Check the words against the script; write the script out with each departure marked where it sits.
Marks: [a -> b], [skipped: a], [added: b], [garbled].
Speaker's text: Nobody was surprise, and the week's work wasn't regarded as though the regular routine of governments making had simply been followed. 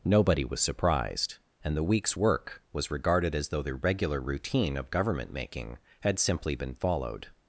Nobody was [surprise, -> surprised] and the week's work [wasn't -> was] regarded as though the regular routine of [governments -> government] making had simply been followed.